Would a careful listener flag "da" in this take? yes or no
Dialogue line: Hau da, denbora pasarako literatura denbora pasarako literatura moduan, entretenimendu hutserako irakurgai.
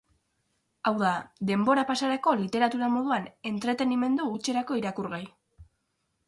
no